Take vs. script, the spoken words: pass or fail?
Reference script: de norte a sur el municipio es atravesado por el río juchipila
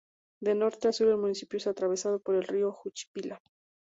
pass